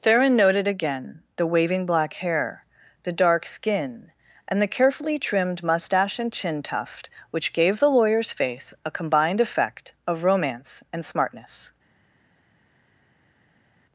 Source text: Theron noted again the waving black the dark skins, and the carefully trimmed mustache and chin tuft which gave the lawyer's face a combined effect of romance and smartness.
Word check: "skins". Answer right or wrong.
wrong